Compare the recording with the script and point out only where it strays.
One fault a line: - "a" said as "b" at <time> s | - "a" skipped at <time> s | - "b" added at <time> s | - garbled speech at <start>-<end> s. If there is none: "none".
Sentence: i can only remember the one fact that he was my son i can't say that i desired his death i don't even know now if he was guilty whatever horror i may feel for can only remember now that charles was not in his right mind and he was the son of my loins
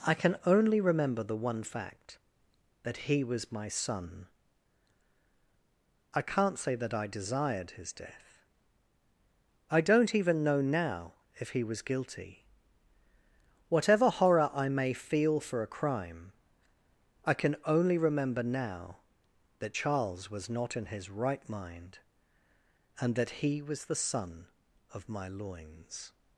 - "a crime i" added at 15.6 s
- "that" added at 23.2 s